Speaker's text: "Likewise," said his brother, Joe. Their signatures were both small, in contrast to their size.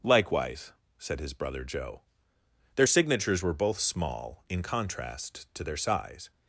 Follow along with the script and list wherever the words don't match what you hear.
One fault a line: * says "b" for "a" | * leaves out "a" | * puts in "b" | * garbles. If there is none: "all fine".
all fine